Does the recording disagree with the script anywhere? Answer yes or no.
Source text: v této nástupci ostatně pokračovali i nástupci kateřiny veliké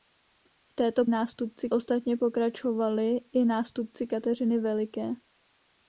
no